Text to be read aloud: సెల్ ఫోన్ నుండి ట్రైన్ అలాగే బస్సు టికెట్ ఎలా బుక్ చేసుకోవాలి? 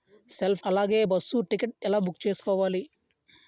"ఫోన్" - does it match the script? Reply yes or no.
no